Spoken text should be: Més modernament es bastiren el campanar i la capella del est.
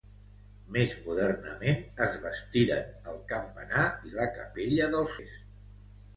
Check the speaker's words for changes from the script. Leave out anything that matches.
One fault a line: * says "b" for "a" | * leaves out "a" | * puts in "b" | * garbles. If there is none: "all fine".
all fine